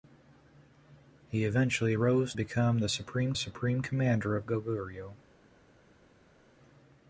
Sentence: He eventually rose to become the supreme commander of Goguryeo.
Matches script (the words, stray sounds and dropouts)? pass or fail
fail